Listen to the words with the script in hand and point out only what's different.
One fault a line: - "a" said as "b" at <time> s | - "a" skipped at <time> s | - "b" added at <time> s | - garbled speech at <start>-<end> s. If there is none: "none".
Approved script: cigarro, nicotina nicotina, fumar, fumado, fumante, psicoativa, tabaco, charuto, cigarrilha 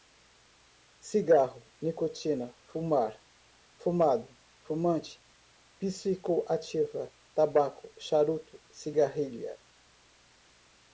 - "nicotina" skipped at 2.5 s